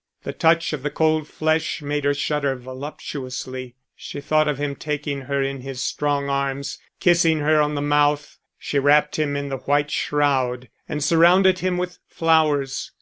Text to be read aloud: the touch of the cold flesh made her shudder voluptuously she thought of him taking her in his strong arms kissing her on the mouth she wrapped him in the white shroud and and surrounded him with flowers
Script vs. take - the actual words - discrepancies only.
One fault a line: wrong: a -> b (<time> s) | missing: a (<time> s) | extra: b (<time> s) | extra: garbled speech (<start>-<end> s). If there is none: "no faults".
missing: and (11.0 s)